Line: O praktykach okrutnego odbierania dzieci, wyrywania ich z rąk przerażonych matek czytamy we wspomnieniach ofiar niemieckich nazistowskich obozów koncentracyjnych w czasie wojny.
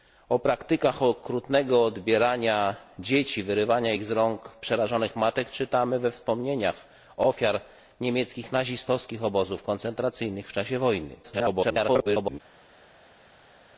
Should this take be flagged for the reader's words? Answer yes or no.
yes